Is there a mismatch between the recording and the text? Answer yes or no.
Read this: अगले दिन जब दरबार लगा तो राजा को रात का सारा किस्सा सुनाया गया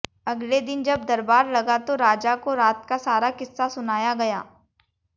no